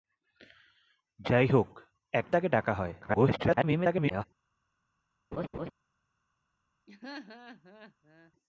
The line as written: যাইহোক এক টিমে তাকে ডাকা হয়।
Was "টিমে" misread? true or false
true